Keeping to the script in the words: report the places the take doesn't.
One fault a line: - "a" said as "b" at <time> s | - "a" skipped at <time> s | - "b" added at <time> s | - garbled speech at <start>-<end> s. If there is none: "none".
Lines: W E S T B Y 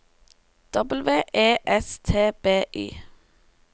none